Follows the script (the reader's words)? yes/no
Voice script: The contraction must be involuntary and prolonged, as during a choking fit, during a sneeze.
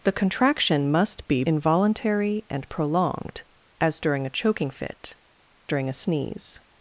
yes